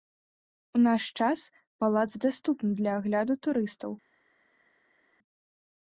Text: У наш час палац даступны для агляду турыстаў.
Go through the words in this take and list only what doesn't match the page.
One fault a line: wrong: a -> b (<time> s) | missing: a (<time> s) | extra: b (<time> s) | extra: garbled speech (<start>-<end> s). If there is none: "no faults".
no faults